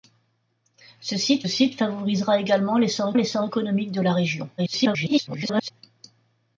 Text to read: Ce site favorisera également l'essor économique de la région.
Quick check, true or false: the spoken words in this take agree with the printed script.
false